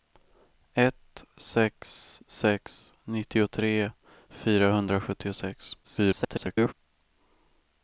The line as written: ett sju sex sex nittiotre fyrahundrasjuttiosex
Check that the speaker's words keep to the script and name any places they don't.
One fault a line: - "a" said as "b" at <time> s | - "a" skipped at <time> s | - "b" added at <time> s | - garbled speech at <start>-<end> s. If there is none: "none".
- "sju" skipped at 1.2 s
- garbled speech at 5.8-6.7 s